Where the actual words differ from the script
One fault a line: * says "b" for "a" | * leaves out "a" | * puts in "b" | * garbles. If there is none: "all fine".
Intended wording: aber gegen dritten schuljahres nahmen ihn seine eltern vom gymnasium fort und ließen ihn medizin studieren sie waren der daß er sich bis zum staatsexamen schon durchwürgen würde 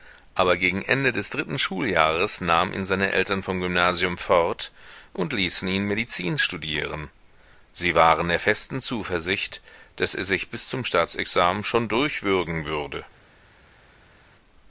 * puts in "ende des"
* puts in "festen zuversicht"